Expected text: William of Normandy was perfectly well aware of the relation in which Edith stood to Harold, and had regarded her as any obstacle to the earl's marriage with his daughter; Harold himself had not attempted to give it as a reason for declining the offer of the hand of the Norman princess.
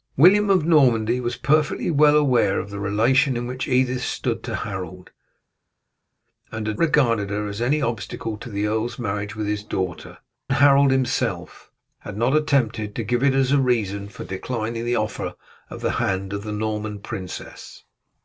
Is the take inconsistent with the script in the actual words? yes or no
no